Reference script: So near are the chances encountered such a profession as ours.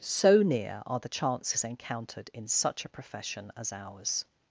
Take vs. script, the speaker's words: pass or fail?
fail